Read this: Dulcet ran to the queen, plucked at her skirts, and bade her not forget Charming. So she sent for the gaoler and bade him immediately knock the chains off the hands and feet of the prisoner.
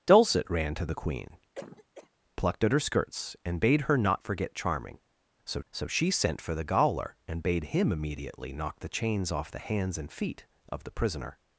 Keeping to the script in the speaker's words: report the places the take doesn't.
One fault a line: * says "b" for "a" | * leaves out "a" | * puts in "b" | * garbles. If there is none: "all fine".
* puts in "so"